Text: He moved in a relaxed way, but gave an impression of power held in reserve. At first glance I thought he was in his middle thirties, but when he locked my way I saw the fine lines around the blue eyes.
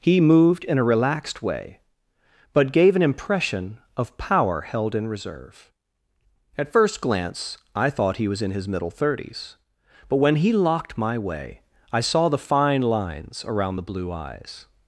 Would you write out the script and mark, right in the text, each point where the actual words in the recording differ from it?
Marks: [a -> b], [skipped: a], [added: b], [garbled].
He moved in a relaxed way, but gave an impression of power held in reserve. At first glance I thought he was in his middle thirties, but when he locked my way I saw the fine lines around the blue eyes.